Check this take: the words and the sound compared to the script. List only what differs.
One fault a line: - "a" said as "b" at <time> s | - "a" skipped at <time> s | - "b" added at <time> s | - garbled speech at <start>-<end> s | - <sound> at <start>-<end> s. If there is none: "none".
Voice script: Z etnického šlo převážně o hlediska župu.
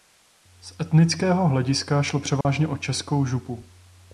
- "hlediska" added at 1.5 s
- dropout at 2.4-2.4 s
- "hlediska" said as "českou" at 2.8 s